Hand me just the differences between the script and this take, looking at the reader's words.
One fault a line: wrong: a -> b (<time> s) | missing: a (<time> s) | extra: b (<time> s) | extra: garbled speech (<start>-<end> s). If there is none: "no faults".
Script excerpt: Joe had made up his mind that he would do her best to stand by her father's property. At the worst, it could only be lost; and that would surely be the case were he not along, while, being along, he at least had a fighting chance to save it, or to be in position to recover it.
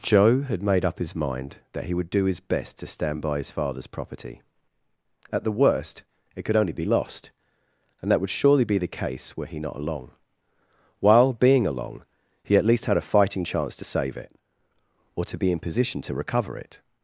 wrong: her -> his (2.2 s)
wrong: her -> his (3.4 s)